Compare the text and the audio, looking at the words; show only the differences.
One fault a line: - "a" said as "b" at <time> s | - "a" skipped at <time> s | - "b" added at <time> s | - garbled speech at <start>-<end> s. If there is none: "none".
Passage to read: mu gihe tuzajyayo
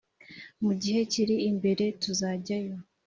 - "kiri imbere" added at 1.1 s